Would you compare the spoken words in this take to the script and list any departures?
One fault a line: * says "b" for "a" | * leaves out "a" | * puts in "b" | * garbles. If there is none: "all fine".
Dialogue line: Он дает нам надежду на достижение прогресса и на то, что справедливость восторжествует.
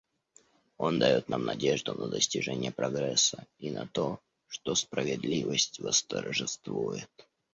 all fine